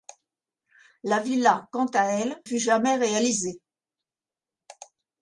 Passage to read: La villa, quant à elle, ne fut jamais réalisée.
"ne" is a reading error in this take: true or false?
true